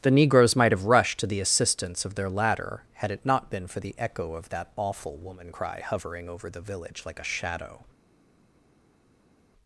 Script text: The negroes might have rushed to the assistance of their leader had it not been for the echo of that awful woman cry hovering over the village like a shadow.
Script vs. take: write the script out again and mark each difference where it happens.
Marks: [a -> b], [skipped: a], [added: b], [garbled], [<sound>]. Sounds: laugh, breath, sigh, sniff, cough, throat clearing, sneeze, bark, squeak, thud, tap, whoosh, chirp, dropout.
The negroes might have rushed to the assistance of their [leader -> ladder] had it not been for the echo of that awful woman cry hovering over the village like a shadow.